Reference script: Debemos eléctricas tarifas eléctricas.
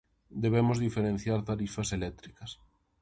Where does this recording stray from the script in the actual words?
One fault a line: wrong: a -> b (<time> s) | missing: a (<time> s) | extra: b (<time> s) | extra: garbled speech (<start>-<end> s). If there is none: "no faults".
wrong: eléctricas -> diferenciar (0.8 s)